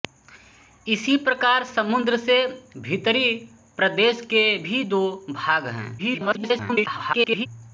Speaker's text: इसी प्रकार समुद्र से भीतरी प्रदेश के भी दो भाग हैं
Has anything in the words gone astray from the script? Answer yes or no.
yes